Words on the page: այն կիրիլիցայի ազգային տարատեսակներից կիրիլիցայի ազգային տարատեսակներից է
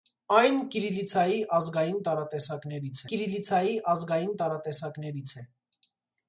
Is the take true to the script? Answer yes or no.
yes